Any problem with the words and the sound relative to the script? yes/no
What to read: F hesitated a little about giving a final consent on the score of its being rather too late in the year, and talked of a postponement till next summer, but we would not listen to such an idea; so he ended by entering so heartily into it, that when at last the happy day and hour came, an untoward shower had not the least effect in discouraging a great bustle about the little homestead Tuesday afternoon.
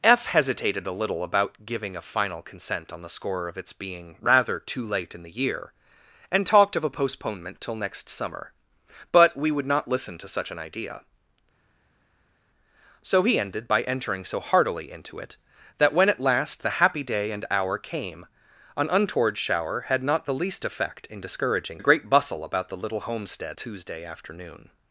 no